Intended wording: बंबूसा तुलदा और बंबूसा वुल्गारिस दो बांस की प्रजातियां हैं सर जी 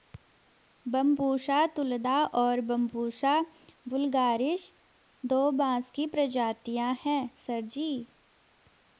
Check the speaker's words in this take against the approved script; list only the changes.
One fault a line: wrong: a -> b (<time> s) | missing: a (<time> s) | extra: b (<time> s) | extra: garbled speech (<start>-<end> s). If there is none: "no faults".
no faults